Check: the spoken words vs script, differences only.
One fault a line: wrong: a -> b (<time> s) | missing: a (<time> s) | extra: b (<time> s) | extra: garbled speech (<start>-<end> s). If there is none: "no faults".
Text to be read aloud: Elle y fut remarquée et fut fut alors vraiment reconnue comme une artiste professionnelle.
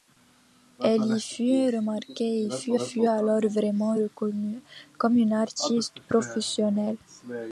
no faults